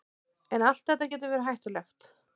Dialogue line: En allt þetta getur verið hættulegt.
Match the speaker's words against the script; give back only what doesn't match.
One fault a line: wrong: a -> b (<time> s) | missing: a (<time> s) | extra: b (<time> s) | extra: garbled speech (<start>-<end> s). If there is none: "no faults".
no faults